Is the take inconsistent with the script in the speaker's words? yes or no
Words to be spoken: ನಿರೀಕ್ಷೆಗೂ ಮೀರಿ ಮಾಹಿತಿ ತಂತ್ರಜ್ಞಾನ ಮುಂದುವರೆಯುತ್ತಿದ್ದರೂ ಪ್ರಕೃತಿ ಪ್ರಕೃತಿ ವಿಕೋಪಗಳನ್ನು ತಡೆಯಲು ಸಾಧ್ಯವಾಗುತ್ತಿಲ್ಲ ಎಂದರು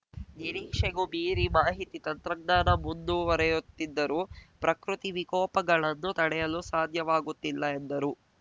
yes